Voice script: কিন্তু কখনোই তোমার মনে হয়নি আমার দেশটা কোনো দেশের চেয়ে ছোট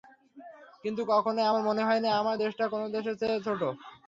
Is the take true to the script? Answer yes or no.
no